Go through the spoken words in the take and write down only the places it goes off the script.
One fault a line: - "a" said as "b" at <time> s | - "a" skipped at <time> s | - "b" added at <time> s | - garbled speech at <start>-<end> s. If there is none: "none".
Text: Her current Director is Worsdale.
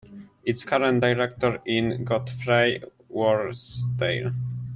- "Her" said as "Its" at 0.4 s
- "Godfrey" added at 2.0 s